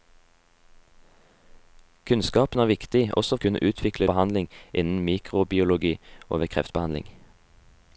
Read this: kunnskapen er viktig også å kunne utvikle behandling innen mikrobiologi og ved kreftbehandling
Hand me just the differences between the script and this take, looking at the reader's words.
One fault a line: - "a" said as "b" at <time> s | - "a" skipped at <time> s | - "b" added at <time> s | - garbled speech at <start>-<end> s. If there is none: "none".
none